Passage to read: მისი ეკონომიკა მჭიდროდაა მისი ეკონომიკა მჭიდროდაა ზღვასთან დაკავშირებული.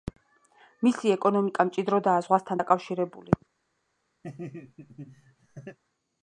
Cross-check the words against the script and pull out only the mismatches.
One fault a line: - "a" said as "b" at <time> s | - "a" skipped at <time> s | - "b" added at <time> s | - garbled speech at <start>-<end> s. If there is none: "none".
- "მისი ეკონომიკა მჭიდროდაა" skipped at 2.2 s